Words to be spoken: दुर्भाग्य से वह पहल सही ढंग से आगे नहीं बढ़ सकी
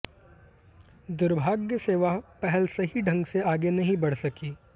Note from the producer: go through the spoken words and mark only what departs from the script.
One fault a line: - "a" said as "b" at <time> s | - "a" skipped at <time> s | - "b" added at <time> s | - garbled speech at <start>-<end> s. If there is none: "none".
none